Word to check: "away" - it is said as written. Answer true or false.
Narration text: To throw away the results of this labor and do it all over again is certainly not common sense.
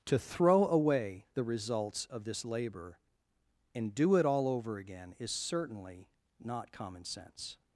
true